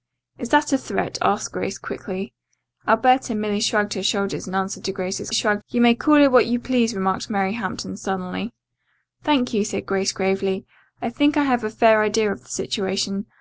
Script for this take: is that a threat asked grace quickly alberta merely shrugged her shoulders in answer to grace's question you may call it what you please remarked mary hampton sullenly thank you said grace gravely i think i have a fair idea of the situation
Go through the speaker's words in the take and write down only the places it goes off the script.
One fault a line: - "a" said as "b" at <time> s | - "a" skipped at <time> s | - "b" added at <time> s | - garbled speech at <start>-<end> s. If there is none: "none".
- "question" said as "shrugged" at 5.3 s